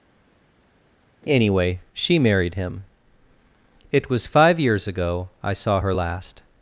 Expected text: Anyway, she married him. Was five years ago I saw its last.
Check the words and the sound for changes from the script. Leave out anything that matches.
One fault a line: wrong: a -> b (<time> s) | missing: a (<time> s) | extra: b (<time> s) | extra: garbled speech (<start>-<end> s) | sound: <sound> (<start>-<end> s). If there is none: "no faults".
extra: It (3.9 s)
wrong: its -> her (5.8 s)